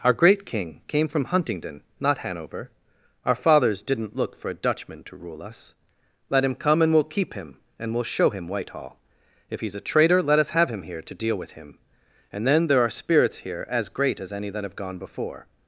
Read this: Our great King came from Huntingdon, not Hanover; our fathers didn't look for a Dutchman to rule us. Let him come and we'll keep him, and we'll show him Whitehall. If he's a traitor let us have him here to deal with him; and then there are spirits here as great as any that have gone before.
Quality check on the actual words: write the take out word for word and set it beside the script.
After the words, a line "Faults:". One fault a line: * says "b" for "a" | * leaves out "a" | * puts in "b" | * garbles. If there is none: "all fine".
Our great King came from Huntingdon, not Hanover; our fathers didn't look for a Dutchman to rule us. Let him come and we'll keep him, and we'll show him Whitehall. If he's a traitor let us have him here to deal with him; and then there are spirits here as great as any that have gone before.
Faults:
all fine